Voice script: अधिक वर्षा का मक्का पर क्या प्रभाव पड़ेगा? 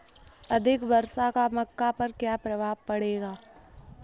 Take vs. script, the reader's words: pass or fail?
pass